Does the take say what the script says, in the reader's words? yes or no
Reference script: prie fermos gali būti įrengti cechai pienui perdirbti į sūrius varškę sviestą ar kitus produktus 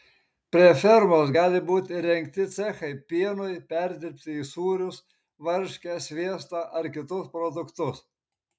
yes